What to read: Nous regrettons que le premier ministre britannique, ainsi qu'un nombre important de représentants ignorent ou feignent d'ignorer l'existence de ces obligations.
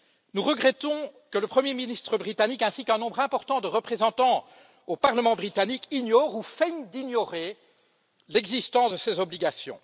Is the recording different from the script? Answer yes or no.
yes